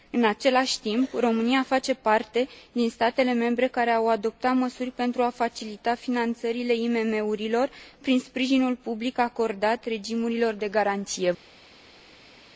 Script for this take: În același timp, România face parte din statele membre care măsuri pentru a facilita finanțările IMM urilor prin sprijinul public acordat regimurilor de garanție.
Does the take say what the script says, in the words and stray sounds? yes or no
no